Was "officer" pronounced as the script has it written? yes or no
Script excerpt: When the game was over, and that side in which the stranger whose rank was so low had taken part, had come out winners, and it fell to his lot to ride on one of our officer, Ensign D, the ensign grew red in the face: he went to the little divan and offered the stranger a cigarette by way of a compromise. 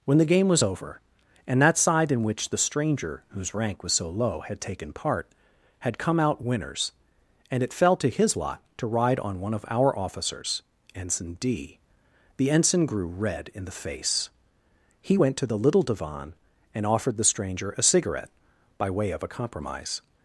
no